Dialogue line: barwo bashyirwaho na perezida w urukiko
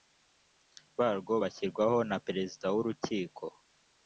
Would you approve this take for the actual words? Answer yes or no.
yes